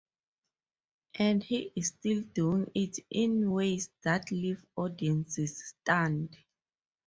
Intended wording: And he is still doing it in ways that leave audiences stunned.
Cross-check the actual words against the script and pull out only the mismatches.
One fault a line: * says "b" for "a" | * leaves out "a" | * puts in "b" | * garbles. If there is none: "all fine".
all fine